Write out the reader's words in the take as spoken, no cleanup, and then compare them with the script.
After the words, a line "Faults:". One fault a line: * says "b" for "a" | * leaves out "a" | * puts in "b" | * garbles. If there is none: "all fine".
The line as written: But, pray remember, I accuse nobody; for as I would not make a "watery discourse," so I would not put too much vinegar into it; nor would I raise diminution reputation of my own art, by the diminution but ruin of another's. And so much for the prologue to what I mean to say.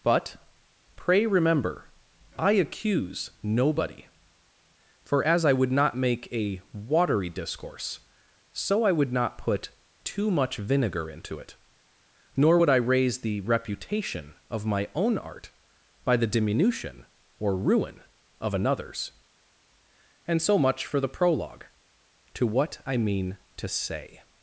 But, pray remember, I accuse nobody; for as I would not make a "watery discourse," so I would not put too much vinegar into it; nor would I raise the reputation of my own art, by the diminution or ruin of another's. And so much for the prologue to what I mean to say.
Faults:
* says "the" for "diminution"
* says "or" for "but"